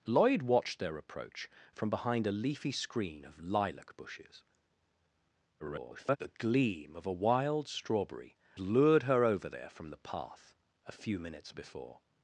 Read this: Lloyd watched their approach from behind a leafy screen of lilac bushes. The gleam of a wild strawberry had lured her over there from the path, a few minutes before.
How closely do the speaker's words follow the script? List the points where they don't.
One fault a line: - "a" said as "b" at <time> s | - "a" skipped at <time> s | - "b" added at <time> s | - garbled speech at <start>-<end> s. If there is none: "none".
- garbled speech at 5.6-6.2 s
- "had" skipped at 8.4 s